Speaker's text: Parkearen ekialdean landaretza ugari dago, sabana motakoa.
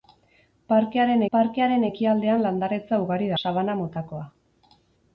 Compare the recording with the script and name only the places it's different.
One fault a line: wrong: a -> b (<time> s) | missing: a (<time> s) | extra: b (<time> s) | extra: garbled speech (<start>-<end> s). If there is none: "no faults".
extra: parkearen (1.3 s)
missing: dago (3.3 s)